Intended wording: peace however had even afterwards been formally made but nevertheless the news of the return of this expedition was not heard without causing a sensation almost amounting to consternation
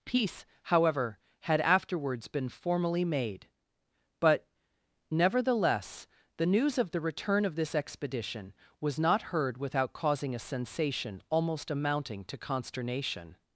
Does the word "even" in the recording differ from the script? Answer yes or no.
yes